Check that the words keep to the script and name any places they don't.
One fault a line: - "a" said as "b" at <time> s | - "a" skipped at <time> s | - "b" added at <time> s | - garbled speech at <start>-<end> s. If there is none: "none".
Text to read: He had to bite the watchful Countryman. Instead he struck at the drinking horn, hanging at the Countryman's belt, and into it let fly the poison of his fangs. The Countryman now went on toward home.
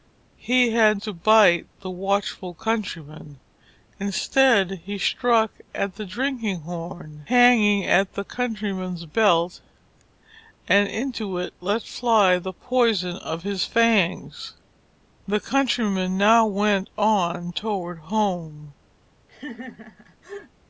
none